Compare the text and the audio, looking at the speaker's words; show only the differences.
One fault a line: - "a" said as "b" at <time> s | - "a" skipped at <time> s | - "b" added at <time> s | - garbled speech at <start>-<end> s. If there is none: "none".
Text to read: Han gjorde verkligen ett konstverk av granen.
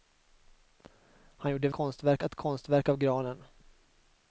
- "verkligen" said as "konstverk" at 1.7 s